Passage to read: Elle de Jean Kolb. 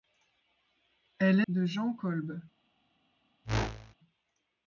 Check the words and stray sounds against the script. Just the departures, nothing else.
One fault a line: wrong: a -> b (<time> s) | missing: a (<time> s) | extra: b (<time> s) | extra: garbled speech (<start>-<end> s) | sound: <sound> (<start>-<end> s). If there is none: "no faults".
sound: whoosh (3.4-3.9 s)